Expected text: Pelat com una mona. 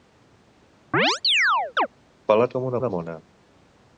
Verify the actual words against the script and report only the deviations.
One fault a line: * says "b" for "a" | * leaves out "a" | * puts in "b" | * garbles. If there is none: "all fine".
* puts in "una"